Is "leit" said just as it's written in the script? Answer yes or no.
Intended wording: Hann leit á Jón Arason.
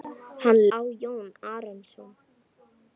no